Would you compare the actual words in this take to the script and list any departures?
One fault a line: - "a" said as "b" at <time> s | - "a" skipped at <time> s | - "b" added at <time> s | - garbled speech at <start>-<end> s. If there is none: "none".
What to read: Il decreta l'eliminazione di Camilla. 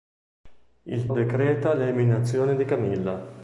none